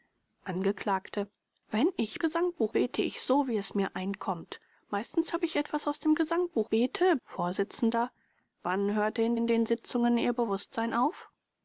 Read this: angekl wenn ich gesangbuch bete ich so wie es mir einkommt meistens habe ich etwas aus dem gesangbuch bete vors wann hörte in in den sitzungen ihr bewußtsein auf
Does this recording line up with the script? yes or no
yes